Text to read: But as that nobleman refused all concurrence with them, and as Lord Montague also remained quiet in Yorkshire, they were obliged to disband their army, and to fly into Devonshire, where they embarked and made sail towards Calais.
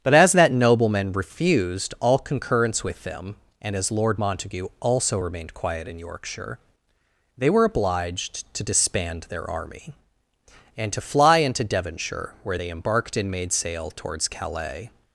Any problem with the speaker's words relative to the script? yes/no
no